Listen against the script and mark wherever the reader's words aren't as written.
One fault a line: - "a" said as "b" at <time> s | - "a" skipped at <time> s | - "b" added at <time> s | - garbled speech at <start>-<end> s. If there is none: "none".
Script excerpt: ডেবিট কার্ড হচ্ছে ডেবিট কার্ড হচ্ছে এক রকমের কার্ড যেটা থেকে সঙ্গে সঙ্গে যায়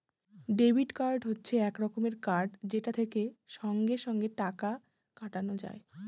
- "ডেবিট কার্ড হচ্ছে" skipped at 1.5 s
- "টাকা কাটানো" added at 4.4 s